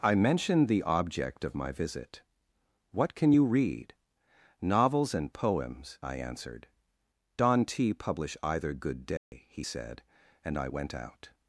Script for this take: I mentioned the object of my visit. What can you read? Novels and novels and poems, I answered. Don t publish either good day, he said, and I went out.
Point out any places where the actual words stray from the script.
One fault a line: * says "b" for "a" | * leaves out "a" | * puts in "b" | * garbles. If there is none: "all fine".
* leaves out "novels and"